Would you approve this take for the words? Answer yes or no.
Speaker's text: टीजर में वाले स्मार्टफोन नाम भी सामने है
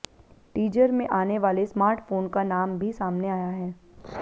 no